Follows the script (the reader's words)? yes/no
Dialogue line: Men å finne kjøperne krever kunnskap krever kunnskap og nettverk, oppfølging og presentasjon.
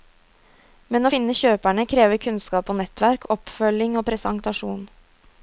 no